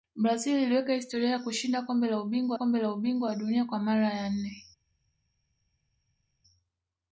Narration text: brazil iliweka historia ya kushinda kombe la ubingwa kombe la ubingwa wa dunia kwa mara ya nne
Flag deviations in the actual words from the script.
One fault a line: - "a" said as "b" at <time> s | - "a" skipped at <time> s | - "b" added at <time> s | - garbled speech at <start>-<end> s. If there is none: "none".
none